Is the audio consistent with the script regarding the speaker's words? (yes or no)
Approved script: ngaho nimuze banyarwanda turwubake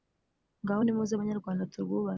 yes